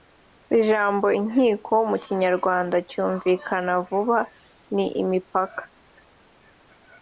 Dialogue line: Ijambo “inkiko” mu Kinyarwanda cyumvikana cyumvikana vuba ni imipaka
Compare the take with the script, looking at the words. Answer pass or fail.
fail